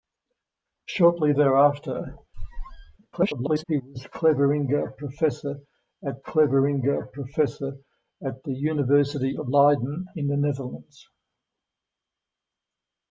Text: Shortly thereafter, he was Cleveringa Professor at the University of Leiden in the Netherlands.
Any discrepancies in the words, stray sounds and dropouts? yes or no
yes